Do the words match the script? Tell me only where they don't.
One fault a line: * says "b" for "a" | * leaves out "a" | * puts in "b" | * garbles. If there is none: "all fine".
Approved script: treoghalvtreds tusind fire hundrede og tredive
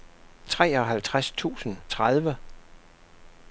* leaves out "fire hundrede og"